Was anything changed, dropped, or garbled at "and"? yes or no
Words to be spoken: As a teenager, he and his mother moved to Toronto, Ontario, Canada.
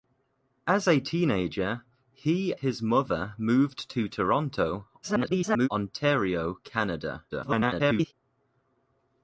yes